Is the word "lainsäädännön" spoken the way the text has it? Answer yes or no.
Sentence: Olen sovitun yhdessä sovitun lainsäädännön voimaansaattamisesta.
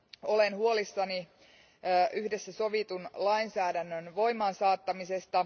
yes